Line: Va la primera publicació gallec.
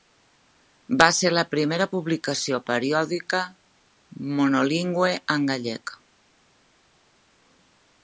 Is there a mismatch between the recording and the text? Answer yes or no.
yes